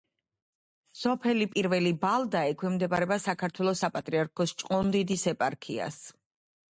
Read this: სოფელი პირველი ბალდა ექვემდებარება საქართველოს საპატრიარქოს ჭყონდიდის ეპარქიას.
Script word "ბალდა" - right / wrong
right